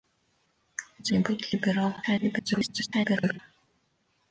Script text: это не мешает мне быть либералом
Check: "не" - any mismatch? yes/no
yes